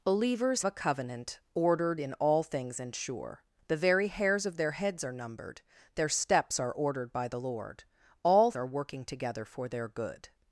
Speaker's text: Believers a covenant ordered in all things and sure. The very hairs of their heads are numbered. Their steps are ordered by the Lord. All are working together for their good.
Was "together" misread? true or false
false